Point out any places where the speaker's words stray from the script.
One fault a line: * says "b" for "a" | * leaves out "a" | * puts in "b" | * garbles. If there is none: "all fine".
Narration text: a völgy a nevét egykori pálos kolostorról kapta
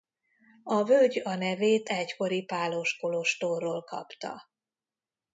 all fine